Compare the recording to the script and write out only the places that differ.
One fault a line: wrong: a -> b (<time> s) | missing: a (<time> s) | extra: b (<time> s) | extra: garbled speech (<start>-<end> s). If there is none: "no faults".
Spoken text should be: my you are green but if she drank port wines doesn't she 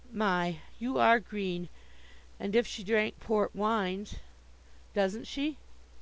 wrong: but -> and (2.4 s)